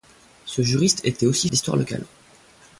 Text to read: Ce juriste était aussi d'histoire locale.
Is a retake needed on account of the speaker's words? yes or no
no